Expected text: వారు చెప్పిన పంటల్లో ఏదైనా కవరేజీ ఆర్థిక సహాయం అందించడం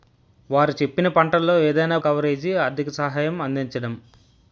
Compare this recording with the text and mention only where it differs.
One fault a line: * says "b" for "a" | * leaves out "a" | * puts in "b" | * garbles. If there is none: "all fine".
all fine